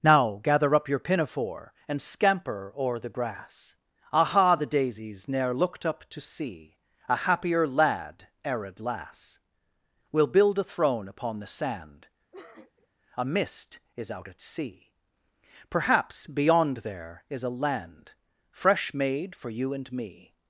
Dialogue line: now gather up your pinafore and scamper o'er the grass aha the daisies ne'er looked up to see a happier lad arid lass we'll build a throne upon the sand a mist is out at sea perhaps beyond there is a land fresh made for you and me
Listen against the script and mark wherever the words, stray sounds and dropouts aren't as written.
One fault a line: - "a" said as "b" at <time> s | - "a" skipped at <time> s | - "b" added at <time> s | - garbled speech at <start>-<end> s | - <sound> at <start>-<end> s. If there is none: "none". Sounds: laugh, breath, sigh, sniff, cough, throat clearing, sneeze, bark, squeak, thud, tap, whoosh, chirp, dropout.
- sniff at 12.3-12.9 s